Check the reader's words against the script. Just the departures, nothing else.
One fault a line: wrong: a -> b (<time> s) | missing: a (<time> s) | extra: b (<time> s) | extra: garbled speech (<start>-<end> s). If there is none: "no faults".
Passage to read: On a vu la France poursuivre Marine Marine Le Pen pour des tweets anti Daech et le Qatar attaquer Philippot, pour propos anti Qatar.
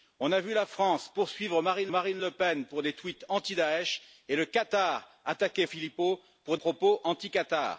no faults